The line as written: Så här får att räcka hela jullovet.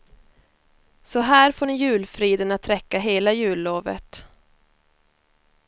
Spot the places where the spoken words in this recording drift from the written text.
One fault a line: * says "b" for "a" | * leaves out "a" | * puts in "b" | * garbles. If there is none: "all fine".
* puts in "ni julfriden"